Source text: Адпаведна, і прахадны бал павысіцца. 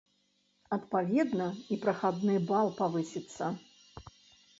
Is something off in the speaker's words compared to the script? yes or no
no